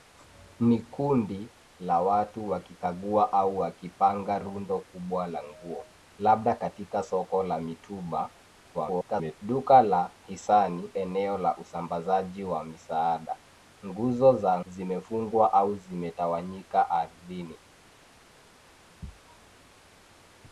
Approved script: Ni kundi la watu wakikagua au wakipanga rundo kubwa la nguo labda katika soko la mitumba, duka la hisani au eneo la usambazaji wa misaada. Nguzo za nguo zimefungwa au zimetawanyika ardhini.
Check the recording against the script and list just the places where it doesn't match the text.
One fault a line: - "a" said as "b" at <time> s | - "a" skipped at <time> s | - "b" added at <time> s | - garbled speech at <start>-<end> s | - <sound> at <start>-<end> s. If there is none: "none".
- garbled speech at 8.7-9.4 s
- "au" skipped at 10.9 s
- "nguo" skipped at 14.6 s